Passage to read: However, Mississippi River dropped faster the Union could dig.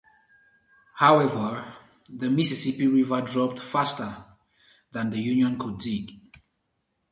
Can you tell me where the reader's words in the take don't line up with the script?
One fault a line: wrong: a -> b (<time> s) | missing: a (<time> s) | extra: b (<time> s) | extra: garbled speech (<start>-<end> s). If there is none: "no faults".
extra: the (2.1 s)
extra: than (4.9 s)